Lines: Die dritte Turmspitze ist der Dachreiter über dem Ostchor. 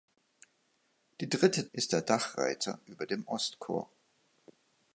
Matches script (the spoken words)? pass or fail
fail